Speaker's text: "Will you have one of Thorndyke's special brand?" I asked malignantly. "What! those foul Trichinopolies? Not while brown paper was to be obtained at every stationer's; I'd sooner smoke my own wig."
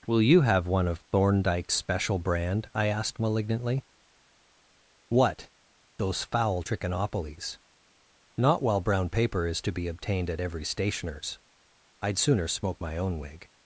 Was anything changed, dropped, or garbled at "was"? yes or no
yes